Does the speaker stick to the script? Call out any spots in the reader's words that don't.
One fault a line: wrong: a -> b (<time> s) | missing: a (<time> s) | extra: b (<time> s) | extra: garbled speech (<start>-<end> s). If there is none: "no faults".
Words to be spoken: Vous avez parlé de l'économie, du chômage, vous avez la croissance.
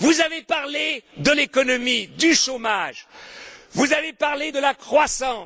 extra: parlé de (4.1 s)